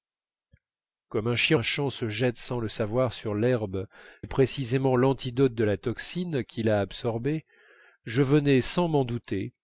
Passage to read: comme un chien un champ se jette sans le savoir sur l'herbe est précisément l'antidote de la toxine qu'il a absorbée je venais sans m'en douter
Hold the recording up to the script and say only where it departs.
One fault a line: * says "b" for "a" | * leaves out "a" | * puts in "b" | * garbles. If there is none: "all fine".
all fine